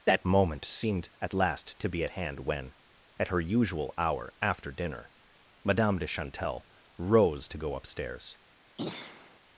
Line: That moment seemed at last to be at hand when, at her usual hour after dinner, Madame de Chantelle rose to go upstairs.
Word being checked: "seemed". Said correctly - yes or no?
yes